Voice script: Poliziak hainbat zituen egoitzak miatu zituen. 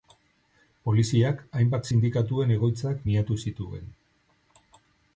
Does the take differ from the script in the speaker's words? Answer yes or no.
yes